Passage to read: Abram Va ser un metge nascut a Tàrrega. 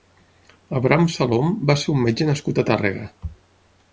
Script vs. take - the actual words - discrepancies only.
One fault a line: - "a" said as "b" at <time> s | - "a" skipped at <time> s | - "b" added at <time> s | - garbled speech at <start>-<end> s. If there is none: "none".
- "Salom" added at 1.1 s